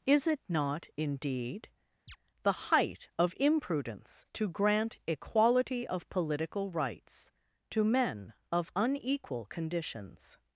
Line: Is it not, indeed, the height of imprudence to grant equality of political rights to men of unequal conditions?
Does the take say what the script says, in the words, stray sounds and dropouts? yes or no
no